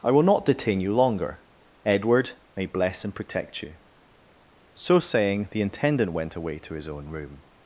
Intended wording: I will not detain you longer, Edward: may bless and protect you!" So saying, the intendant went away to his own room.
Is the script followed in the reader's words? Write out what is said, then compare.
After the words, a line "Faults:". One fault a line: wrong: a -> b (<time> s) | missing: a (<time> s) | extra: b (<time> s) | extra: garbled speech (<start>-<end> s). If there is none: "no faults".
I will not detain you longer, Edward: may bless and protect you!" So saying, the intendant went away to his own room.
Faults:
no faults